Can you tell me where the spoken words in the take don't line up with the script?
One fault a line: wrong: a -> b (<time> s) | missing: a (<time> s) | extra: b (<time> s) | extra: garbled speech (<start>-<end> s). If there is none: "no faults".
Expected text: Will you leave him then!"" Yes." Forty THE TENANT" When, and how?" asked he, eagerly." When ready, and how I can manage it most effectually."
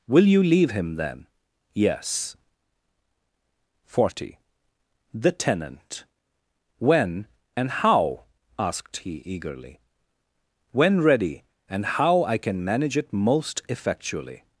no faults